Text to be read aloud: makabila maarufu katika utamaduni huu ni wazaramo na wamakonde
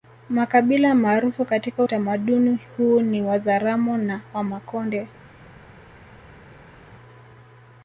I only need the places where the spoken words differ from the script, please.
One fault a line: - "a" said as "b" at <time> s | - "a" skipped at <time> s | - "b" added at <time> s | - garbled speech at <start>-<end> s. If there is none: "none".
none